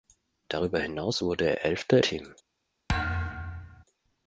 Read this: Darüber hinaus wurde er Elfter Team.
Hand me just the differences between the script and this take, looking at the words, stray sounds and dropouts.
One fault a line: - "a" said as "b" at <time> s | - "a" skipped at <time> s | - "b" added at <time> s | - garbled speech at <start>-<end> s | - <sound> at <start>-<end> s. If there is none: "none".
- thud at 2.9-3.8 s